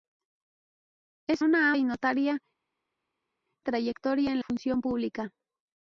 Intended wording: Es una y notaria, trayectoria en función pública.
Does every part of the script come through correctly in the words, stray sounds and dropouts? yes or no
yes